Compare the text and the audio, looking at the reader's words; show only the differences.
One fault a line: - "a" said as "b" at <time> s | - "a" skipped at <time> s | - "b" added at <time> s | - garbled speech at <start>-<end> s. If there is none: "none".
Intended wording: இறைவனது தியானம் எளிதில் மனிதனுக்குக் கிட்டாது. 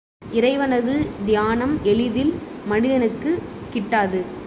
none